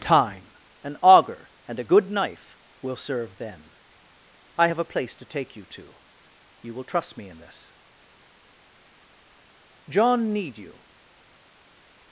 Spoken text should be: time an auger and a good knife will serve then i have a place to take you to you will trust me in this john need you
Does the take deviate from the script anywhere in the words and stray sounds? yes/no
no